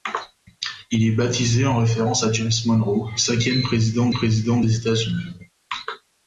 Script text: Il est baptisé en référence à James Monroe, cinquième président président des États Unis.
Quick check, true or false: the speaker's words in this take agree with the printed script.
true